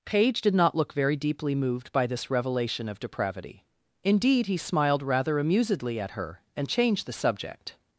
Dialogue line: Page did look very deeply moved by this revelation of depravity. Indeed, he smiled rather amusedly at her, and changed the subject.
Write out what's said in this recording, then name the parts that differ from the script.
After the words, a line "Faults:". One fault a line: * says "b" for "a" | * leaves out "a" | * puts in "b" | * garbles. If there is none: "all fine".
Page did not look very deeply moved by this revelation of depravity. Indeed, he smiled rather amusedly at her, and changed the subject.
Faults:
* puts in "not"